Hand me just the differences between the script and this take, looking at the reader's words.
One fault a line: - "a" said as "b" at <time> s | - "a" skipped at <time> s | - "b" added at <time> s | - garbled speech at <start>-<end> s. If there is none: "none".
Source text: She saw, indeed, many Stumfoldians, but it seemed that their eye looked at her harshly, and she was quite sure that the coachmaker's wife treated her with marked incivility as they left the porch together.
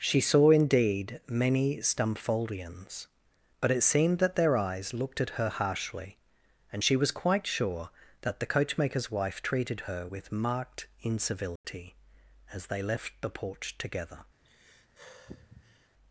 - "eye" said as "eyes" at 4.6 s